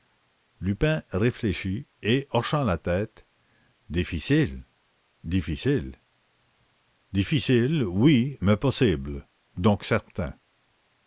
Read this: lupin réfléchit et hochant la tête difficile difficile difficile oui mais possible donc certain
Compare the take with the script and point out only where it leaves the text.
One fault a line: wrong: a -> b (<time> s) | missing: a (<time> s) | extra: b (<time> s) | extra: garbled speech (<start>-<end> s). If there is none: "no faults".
no faults